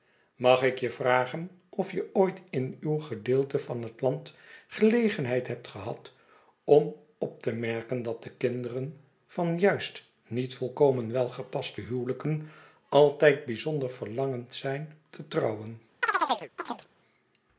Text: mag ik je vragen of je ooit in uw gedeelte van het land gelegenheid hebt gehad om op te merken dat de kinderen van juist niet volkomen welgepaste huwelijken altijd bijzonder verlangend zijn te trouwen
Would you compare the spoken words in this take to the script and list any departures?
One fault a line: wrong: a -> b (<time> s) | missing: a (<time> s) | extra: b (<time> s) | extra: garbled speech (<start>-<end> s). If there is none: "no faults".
no faults